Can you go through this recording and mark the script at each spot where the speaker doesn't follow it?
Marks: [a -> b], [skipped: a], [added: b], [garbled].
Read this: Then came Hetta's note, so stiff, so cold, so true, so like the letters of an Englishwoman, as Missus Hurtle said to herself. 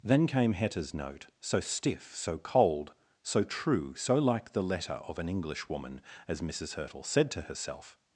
Then came Hetta's note, so stiff, so cold, so true, so like the [letters -> letter] of an Englishwoman, as Missus Hurtle said to herself.